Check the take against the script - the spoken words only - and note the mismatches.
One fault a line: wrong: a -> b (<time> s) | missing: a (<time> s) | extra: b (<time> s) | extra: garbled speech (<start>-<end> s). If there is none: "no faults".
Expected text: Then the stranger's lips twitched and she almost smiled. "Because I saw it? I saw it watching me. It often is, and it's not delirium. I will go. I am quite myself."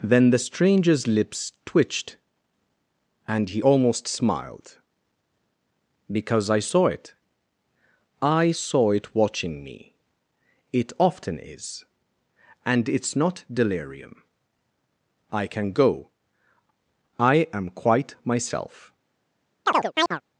wrong: she -> he (3.5 s)
wrong: will -> can (15.4 s)